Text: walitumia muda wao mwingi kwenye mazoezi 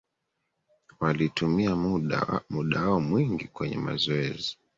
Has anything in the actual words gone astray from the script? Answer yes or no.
no